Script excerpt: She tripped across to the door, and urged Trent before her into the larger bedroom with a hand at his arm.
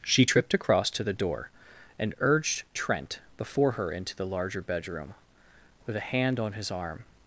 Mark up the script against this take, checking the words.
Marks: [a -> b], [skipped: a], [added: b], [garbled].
She tripped across to the door, and urged Trent before her into the larger bedroom with a hand [at -> on] his arm.